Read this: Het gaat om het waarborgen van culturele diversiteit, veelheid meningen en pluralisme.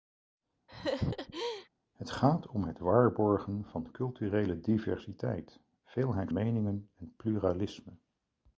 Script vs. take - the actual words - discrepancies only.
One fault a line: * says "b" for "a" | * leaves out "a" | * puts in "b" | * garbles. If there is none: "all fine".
all fine